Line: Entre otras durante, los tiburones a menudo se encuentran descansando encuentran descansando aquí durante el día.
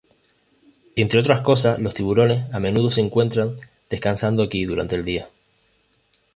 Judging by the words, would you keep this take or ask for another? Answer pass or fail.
fail